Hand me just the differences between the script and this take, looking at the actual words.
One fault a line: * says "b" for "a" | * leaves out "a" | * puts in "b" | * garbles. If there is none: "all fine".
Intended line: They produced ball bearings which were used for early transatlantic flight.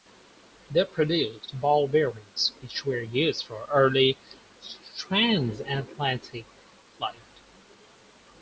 all fine